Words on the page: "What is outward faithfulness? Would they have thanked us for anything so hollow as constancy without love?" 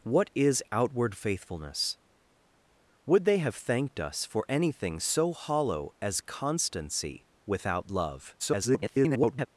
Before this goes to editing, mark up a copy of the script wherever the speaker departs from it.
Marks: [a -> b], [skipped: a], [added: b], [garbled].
"What is outward faithfulness? Would they have thanked us for anything so hollow as constancy without love?" [garbled]